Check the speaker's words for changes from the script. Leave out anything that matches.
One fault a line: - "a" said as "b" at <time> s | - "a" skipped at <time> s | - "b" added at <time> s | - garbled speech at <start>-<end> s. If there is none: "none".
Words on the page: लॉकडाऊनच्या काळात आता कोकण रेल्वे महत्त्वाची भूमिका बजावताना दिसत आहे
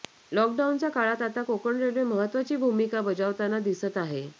none